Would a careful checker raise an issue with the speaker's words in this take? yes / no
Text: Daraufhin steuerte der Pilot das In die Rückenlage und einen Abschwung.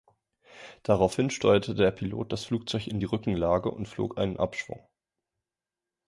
yes